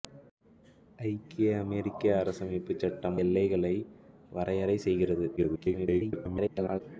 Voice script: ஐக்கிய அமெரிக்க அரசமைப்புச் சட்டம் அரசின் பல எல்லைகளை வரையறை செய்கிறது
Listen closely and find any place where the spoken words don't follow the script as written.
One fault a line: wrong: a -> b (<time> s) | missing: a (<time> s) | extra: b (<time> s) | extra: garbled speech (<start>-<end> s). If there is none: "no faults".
missing: அரசின் பல (3.2 s)
extra: garbled speech (5.4-6.8 s)